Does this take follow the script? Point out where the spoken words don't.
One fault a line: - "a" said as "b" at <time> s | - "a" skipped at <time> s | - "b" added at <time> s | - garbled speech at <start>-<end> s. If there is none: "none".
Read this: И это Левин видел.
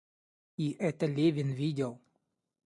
none